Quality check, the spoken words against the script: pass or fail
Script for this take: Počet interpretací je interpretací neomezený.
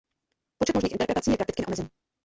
fail